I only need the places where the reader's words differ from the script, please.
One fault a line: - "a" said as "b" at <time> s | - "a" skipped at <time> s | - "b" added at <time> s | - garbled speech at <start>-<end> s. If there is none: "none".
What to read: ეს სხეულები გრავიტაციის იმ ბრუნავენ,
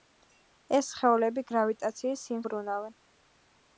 none